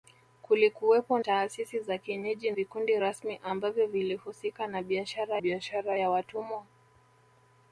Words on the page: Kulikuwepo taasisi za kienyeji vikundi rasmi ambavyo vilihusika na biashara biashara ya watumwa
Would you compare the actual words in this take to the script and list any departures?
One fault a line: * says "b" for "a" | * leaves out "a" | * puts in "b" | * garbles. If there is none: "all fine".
all fine